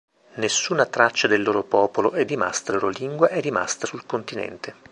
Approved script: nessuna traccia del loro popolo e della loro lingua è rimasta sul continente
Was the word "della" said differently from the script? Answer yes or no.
yes